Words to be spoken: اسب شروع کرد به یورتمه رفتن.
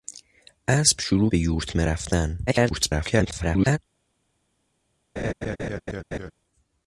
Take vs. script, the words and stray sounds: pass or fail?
fail